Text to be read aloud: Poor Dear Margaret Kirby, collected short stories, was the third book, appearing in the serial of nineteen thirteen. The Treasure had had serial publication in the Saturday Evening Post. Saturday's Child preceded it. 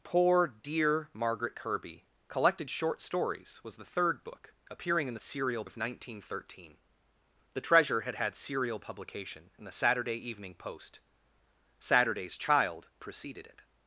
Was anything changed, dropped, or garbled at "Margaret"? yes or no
no